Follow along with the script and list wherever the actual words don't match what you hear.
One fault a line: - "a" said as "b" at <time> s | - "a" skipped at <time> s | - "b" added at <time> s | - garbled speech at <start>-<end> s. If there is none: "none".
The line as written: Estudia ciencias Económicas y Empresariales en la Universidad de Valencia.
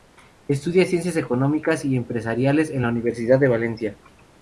none